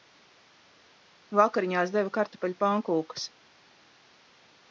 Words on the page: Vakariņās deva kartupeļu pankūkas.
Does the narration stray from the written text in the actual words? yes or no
no